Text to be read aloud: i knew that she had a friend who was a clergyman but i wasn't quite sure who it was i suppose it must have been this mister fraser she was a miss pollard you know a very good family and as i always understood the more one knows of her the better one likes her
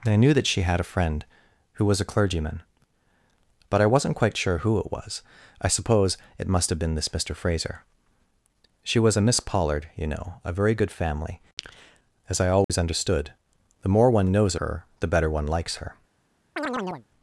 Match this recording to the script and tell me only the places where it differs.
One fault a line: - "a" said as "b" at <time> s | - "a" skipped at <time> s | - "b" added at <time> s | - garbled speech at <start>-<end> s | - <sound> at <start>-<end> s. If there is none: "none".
- "and" skipped at 11.4 s
- dropout at 12.6-12.7 s
- "of" skipped at 14.5 s
- chirp at 16.6-17.1 s